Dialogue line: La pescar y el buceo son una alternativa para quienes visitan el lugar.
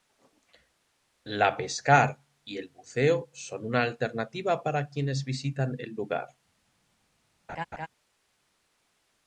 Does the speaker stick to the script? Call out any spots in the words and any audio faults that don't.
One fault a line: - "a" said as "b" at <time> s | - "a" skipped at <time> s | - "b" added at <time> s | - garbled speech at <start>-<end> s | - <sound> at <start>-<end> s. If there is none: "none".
- laugh at 7.5-7.9 s